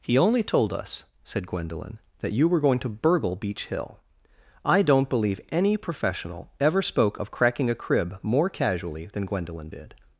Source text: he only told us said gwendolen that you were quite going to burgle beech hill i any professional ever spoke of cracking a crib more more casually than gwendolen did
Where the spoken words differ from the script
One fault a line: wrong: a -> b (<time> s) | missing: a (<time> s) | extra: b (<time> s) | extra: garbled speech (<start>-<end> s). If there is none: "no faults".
missing: quite (2.6 s)
extra: don't believe (4.8 s)
missing: more (8.5 s)